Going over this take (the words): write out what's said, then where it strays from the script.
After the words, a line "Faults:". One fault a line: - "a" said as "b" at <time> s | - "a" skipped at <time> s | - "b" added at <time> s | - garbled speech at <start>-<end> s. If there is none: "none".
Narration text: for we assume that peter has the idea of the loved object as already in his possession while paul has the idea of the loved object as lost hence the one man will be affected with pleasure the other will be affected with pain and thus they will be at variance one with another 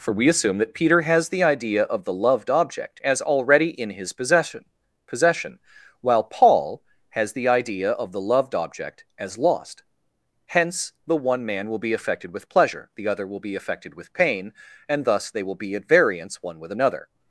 for we assume that peter has the idea of the loved object as already in his possession possession while paul has the idea of the loved object as lost hence the one man will be affected with pleasure the other will be affected with pain and thus they will be at variance one with another
Faults:
- "possession" added at 5.0 s